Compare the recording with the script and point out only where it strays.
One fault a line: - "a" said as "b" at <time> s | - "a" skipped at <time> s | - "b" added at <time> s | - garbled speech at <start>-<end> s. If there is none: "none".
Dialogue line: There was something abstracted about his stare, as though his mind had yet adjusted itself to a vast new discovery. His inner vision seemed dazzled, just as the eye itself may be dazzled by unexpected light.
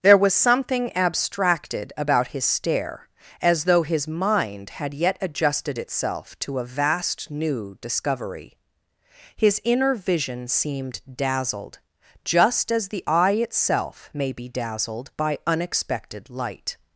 none